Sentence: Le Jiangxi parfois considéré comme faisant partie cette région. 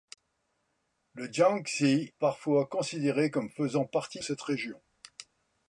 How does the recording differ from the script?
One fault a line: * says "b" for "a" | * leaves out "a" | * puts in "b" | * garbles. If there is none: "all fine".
all fine